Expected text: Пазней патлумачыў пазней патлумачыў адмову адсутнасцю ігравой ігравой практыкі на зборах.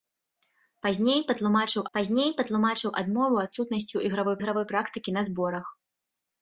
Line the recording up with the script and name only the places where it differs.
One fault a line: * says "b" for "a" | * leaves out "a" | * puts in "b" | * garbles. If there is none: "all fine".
all fine